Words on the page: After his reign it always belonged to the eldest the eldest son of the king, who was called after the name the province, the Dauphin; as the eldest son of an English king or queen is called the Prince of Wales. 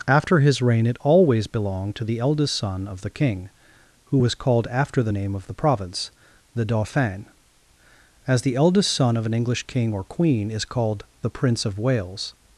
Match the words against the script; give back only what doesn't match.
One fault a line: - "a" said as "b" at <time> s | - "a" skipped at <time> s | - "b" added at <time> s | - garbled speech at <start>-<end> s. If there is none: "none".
- "the eldest" skipped at 2.5 s
- "of" added at 5.3 s